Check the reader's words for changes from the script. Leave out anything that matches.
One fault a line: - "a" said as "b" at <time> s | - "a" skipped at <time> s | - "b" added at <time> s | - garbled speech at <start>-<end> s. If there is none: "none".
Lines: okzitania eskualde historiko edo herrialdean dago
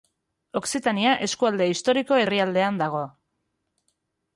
- "edo" skipped at 2.2 s